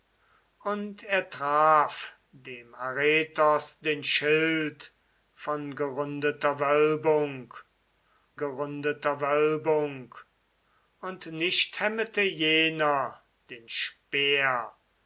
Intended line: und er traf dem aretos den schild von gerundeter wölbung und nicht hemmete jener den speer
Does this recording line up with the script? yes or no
no